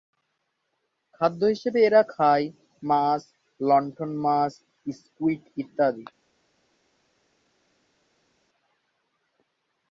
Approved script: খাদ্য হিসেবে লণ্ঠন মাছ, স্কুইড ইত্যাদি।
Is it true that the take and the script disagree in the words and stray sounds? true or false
true